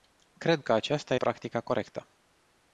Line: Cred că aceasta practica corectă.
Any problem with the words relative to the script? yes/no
no